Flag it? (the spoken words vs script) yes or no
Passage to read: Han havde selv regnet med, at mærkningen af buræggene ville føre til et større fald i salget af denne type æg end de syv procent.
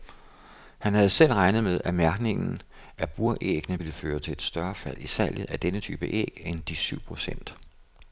no